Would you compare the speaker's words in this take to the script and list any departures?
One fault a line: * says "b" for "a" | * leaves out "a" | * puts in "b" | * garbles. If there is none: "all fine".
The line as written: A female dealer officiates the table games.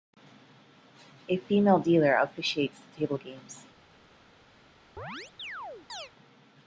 all fine